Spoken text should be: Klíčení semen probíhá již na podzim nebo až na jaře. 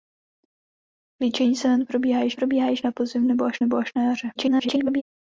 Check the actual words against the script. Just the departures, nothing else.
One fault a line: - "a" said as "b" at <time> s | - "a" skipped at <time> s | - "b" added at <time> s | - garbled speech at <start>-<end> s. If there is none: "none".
- "probíhá již" added at 2.3 s
- "nebo až" added at 3.6 s
- garbled speech at 4.4-5.0 s